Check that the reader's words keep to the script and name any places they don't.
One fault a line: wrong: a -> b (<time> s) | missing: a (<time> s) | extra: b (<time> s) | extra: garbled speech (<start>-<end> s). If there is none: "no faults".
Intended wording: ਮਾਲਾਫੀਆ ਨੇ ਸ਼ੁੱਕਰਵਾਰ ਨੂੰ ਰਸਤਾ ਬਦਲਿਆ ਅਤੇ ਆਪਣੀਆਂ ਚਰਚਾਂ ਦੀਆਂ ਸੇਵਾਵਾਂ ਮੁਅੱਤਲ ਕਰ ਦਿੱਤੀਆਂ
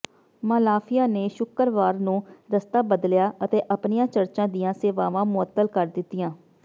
no faults